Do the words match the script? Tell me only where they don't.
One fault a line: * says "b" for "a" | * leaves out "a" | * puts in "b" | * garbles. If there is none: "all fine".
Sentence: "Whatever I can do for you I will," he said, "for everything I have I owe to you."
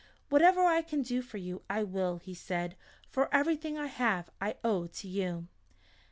all fine